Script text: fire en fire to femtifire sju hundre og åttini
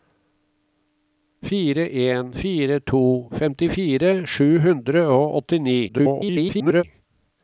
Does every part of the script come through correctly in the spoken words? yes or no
no